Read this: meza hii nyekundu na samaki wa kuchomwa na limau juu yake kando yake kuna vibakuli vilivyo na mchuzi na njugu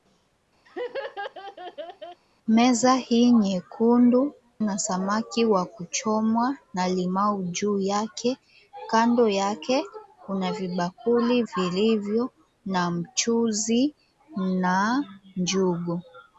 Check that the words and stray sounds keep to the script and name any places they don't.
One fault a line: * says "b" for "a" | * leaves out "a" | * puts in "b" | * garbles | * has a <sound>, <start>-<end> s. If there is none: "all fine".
* has a laugh, 0.7-2.2 s